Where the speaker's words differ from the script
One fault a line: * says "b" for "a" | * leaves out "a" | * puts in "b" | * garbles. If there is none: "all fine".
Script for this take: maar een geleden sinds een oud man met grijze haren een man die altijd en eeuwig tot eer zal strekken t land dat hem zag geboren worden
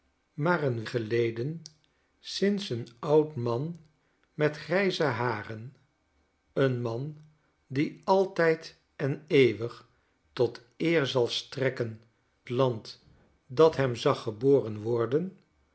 all fine